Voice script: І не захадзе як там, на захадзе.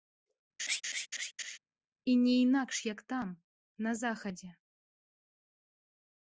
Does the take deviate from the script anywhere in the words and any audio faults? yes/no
yes